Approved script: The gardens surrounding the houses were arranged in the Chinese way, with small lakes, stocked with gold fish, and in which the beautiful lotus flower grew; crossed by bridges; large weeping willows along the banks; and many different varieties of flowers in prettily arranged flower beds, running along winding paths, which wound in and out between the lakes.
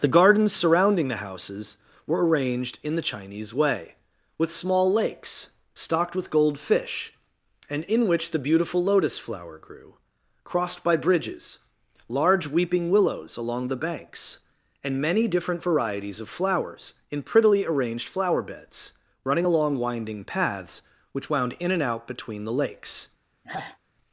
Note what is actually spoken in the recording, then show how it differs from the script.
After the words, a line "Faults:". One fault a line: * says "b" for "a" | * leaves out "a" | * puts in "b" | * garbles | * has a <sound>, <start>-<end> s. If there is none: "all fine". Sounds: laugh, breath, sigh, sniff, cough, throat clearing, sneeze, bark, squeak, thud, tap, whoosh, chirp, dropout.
The gardens surrounding the houses were arranged in the Chinese way, with small lakes, stocked with gold fish, and in which the beautiful lotus flower grew; crossed by bridges; large weeping willows along the banks; and many different varieties of flowers in prettily arranged flower beds, running along winding paths, which wound in and out between the lakes.
Faults:
* has a sigh, 23.4-23.8 s